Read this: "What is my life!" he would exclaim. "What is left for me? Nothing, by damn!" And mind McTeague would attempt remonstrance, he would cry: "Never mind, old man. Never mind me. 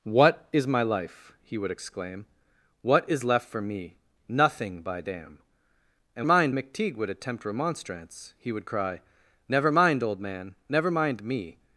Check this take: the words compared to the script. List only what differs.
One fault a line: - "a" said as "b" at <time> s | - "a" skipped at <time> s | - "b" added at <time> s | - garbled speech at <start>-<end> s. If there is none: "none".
none